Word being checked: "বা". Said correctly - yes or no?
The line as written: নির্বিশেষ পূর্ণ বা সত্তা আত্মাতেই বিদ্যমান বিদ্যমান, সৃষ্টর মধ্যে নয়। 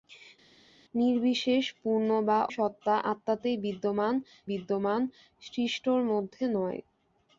yes